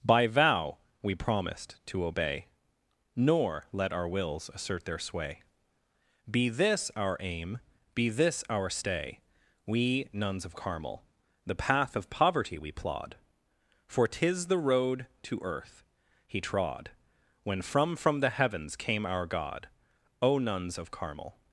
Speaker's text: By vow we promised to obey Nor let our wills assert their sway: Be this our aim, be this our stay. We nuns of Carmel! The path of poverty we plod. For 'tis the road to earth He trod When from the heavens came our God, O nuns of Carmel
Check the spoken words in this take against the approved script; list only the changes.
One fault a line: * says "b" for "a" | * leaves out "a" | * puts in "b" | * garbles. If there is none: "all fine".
* puts in "from"